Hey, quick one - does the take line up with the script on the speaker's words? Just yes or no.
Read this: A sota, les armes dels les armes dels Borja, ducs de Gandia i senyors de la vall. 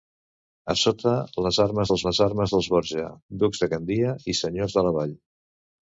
yes